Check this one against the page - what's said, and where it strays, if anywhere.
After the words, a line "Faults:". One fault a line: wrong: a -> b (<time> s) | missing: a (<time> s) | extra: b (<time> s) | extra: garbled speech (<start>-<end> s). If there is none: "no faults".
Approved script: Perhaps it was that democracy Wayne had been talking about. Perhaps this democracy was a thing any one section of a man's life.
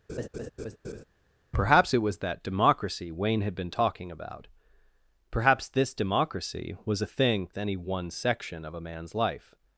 Perhaps it was that democracy Wayne had been talking about. Perhaps this democracy was a thing any one section of a man's life.
Faults:
no faults